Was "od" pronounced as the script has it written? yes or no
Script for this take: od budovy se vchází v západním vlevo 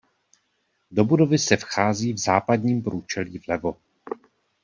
no